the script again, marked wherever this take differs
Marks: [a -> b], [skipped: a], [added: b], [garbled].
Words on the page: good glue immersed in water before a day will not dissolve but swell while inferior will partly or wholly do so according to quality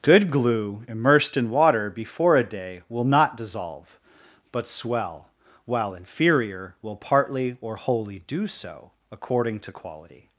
good glue immersed in water before a day will not dissolve but swell while inferior will partly or wholly do so according to quality